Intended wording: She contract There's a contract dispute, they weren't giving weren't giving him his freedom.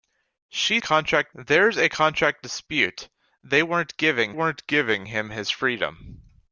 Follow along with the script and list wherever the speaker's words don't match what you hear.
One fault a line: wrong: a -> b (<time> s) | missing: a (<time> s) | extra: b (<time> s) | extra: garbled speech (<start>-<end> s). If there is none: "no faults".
no faults